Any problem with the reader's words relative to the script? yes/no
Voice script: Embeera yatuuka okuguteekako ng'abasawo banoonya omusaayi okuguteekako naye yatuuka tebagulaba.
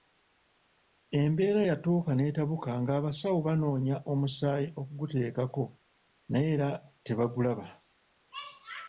yes